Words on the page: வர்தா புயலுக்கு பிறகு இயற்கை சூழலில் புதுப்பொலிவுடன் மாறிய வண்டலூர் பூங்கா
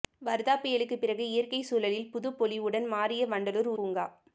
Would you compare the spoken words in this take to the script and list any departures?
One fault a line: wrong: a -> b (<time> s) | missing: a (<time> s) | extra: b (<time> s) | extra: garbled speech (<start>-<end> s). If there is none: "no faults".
no faults